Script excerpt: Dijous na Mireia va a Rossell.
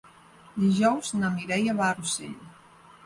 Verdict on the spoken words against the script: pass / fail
pass